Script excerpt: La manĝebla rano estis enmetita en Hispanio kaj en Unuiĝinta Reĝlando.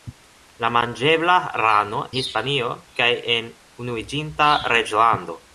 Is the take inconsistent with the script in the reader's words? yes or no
yes